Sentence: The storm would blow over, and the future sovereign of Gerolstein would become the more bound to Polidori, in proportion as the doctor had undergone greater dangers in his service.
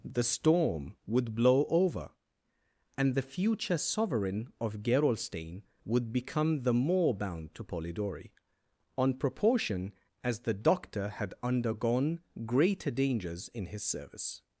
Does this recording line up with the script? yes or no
no